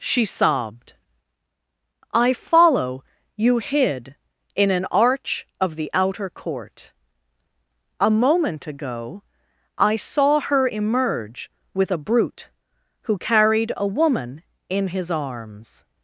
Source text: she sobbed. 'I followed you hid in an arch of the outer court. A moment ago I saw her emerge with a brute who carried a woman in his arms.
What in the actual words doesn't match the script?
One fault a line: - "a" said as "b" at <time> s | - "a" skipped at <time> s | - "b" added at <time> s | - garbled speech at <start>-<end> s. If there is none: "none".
- "followed" said as "follow" at 2.3 s